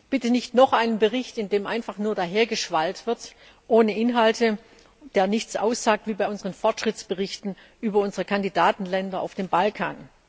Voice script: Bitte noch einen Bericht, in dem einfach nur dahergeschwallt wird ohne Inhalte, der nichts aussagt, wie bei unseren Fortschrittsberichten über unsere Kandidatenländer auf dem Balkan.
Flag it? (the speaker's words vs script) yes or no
yes